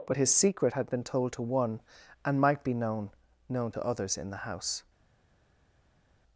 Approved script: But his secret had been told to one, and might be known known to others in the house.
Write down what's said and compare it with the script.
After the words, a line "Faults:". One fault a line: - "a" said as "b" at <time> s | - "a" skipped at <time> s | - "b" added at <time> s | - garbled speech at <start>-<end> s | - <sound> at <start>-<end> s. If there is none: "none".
But his secret had been told to one, and might be known known to others in the house.
Faults:
none